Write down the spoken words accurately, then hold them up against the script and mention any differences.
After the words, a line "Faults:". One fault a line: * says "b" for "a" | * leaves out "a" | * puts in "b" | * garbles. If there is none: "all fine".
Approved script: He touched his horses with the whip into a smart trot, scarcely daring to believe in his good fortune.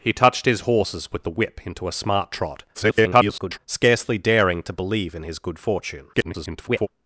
He touched his horses with the whip into a smart trot, [garbled] scarcely daring to believe in his good fortune. [garbled]
Faults:
* garbles
* garbles